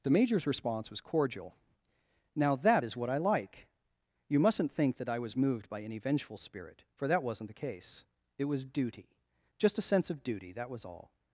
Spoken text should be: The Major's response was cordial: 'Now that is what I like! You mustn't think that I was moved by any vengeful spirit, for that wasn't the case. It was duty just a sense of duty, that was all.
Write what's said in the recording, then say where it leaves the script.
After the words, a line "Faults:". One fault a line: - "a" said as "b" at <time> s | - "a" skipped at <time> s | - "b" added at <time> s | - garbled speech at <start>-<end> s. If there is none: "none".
The Major's response was cordial: 'Now that is what I like! You mustn't think that I was moved by any vengeful spirit, for that wasn't the case. It was duty just a sense of duty, that was all.
Faults:
none